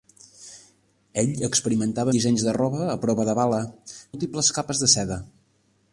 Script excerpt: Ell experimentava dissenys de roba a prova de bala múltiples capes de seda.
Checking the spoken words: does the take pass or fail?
pass